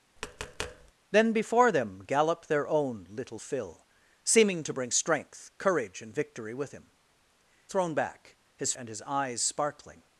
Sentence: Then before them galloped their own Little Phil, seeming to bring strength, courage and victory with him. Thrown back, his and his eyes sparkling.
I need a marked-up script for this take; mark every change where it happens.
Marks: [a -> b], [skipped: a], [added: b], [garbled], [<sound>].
[tap] Then before them galloped their own Little Phil, seeming to bring strength, courage and victory with him. Thrown back, his and his eyes sparkling.